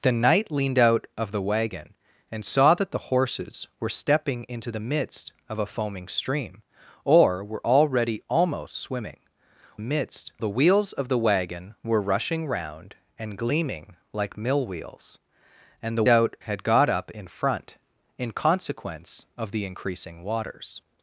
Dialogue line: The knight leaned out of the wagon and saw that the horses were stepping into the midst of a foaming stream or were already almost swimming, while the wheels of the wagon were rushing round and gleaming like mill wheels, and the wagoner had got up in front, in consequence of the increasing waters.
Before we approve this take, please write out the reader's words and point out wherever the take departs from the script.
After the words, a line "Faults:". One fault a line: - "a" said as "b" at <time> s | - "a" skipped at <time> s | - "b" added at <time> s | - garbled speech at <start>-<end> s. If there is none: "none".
The knight leaned out of the wagon and saw that the horses were stepping into the midst of a foaming stream or were already almost swimming, midst the wheels of the wagon were rushing round and gleaming like mill wheels, and the out had got up in front, in consequence of the increasing waters.
Faults:
- "while" said as "midst" at 9.8 s
- "wagoner" said as "out" at 16.1 s